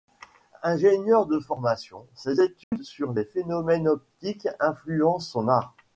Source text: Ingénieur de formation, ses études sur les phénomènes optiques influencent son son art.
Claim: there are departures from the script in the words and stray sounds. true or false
true